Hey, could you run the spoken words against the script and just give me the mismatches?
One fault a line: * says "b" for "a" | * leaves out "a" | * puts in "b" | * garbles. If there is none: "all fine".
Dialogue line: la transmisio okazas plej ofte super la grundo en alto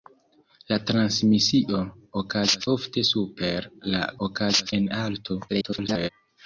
* leaves out "plej"
* says "okazas" for "grundo"
* garbles